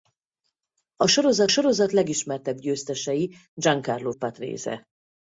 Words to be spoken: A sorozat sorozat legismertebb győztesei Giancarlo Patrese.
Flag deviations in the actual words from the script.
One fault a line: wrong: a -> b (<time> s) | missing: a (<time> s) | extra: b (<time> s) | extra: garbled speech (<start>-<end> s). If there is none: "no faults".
no faults